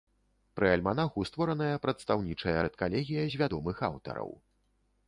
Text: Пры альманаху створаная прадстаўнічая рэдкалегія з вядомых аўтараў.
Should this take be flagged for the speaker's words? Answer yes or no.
no